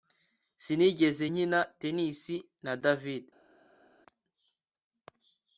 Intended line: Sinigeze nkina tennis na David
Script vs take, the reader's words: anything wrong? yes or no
no